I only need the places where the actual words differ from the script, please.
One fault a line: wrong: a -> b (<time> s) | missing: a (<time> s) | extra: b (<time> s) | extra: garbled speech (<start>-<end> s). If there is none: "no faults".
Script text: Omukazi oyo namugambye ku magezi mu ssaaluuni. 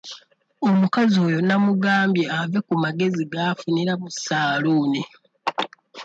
extra: ave (2.4 s)
extra: g'afunira (3.3 s)